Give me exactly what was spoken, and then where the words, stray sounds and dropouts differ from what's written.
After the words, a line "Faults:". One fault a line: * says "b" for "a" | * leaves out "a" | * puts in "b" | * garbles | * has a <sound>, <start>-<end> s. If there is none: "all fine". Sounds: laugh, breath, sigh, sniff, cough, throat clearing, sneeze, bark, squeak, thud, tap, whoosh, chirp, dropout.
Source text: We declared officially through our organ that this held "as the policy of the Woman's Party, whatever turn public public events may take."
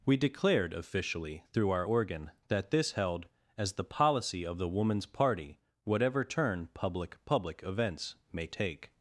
We declared officially through our organ that this held "as the policy of the Woman's Party, whatever turn public public events may take."
Faults:
all fine